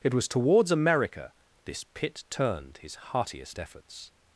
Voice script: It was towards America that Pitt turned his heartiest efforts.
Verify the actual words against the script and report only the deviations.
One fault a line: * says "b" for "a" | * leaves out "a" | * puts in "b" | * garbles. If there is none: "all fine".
* says "this" for "that"